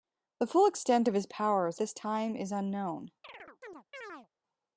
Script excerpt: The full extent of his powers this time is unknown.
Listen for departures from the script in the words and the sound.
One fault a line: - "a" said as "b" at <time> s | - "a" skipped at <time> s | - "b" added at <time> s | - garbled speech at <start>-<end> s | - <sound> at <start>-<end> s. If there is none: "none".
- chirp at 3.2-4.3 s